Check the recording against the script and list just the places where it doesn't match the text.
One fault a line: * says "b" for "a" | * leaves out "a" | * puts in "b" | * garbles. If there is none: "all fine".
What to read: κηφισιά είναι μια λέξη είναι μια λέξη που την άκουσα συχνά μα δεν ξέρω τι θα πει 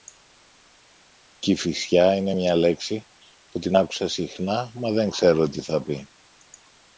* leaves out "είναι μια λέξη"